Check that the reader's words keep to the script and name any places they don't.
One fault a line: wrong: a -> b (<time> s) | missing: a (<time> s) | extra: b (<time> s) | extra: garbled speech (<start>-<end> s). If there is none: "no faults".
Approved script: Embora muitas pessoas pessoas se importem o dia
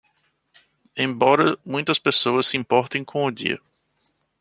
missing: pessoas (2.5 s)
extra: com (3.0 s)